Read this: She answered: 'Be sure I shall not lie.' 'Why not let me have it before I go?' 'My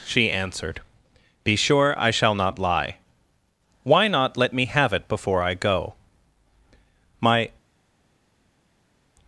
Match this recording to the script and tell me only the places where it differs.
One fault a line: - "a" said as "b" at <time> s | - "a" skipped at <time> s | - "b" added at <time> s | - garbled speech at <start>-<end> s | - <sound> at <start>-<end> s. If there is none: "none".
none